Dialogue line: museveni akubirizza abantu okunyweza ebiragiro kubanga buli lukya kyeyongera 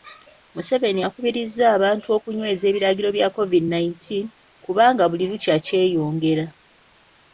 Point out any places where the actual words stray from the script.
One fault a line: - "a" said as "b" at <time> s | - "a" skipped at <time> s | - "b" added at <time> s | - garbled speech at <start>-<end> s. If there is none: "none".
- "bya covid nineteen" added at 3.2 s